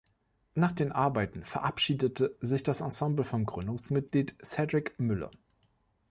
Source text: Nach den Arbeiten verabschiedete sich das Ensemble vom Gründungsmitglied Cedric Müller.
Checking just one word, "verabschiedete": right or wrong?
right